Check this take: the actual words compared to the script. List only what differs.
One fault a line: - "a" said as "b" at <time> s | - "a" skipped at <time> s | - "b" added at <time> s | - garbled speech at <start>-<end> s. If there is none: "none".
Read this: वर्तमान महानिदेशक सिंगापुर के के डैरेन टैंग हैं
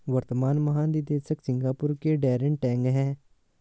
- "के" skipped at 2.1 s